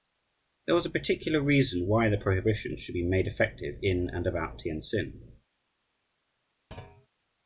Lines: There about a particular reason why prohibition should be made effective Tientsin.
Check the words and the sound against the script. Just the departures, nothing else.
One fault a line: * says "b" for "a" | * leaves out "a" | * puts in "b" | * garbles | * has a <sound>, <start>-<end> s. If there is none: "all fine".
* says "was" for "about"
* puts in "the"
* puts in "in and about"
* has a thud, 6.7-7.1 s